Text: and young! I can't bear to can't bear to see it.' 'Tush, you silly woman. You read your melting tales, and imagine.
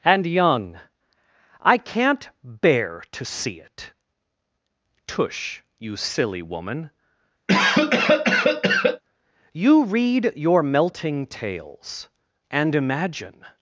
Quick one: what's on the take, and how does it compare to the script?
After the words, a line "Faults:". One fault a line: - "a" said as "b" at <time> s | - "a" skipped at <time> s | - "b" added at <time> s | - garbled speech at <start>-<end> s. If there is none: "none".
and young! I can't bear to see it.' 'Tush, you silly woman. You read your melting tales, and imagine.
Faults:
- "can't bear to" skipped at 3.2 s